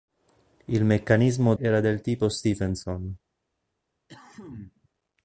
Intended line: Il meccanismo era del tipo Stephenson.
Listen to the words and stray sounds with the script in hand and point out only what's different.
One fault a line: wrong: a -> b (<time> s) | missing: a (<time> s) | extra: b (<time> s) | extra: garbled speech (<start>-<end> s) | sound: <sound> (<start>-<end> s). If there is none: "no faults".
sound: cough (4.1-4.9 s)